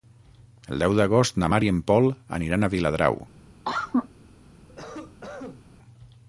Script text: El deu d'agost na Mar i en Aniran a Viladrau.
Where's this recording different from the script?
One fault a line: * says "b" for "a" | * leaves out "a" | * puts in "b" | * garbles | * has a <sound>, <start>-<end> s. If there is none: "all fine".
* puts in "Pol"
* has a cough, 3.6-4.1 s
* has a cough, 4.7-5.6 s